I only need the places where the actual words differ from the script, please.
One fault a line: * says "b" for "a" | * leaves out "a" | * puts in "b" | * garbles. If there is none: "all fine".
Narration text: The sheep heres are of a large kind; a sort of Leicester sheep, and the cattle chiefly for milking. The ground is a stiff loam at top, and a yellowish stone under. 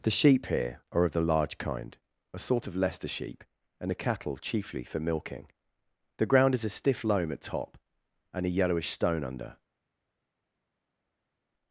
* says "here" for "heres"
* says "the" for "a"